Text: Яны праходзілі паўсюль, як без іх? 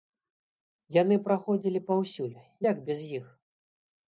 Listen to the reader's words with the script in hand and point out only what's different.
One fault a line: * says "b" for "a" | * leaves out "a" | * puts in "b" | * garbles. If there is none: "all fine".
all fine